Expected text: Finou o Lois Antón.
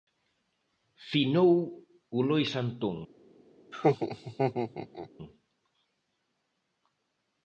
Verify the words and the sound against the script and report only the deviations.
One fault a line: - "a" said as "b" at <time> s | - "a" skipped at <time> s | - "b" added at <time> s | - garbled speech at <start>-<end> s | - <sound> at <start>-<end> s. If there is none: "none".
- laugh at 3.7-5.1 s